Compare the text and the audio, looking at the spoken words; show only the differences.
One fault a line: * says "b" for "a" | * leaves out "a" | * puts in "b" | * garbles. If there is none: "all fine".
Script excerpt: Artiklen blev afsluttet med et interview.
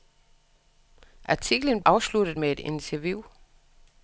* leaves out "blev"